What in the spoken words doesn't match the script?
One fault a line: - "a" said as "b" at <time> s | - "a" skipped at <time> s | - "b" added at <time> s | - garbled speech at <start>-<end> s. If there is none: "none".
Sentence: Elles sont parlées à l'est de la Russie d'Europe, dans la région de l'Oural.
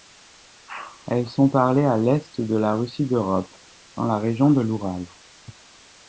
none